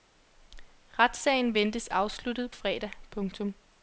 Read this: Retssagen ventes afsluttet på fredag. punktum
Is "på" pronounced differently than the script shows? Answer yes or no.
yes